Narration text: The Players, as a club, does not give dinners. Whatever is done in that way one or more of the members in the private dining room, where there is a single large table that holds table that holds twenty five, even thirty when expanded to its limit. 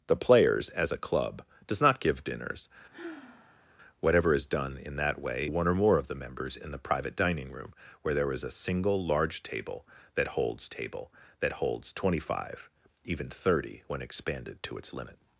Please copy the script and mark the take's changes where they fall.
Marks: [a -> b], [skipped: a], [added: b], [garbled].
The Players, as a club, does not give dinners. Whatever is done in that way one or more of the members in the private dining room, where there is a single large table that holds table that holds twenty five, even thirty when expanded to its limit.